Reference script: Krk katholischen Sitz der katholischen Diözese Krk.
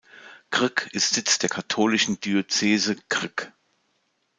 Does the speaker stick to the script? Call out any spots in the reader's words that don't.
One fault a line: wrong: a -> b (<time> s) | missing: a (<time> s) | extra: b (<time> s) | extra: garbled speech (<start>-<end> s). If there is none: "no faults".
wrong: katholischen -> ist (0.9 s)